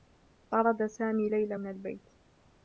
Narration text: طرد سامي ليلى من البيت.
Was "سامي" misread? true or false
false